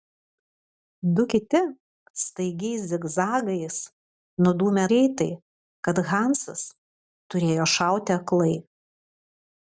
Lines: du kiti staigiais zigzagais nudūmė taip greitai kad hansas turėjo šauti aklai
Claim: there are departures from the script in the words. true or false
true